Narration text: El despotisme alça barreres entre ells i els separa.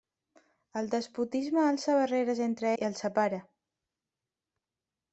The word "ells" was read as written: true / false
false